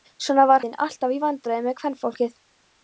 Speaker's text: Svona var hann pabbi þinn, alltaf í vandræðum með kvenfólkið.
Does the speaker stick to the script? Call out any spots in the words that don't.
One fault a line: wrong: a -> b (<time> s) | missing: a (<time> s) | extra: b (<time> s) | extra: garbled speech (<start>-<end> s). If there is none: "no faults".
missing: hann pabbi (0.6 s)